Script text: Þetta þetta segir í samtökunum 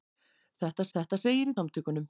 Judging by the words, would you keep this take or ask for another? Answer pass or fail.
pass